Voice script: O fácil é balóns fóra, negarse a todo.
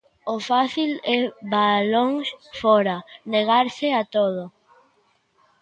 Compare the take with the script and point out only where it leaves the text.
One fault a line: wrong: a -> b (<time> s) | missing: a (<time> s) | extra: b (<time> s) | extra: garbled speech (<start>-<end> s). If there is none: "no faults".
no faults